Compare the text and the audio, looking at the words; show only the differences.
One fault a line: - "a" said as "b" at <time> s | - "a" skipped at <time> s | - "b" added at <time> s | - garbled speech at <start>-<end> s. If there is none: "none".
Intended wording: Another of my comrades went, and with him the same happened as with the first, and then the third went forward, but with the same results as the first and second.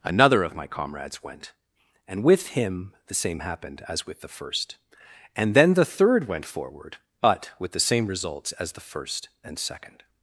none